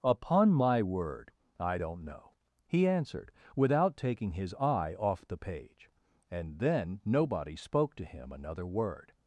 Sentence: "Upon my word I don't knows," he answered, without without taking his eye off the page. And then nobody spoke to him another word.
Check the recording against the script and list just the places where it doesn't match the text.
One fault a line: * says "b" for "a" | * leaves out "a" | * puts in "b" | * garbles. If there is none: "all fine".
* says "know" for "knows"
* leaves out "without"